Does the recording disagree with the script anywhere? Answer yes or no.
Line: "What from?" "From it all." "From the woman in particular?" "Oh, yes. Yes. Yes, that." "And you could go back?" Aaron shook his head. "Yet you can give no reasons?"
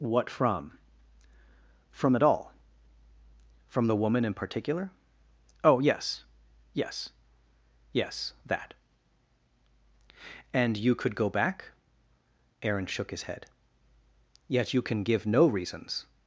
no